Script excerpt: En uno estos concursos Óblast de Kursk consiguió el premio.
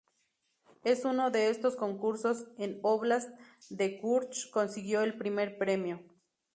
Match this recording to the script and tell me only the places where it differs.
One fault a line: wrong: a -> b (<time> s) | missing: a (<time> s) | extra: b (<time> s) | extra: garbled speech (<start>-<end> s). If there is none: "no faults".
extra: de (1.3 s)
extra: en (2.6 s)
extra: primer (5.2 s)